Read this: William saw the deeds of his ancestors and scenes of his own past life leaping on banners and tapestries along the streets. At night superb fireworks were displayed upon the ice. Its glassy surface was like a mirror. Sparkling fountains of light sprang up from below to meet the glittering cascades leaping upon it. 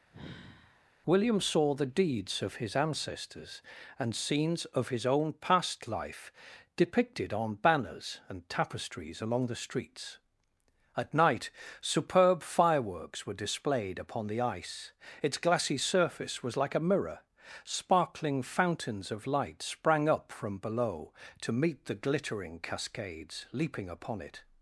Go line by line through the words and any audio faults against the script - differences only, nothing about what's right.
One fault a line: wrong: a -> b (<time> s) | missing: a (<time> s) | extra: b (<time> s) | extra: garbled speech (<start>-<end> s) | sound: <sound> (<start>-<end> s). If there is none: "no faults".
sound: sigh (0.1-0.9 s)
wrong: leaping -> depicted (6.8 s)